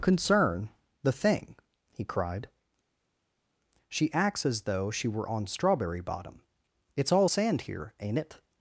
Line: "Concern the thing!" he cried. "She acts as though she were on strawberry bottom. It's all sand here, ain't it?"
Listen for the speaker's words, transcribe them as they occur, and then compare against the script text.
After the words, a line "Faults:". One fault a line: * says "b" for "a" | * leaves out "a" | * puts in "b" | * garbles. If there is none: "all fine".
"Concern the thing!" he cried. "She acts as though she were on strawberry bottom. It's all sand here, ain't it?"
Faults:
all fine